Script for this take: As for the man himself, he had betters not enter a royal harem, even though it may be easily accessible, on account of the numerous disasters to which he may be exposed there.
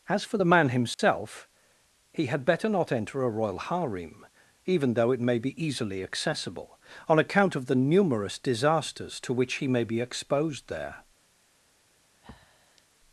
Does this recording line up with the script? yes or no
no